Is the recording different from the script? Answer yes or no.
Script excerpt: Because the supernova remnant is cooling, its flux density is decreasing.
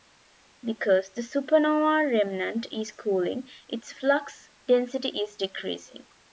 no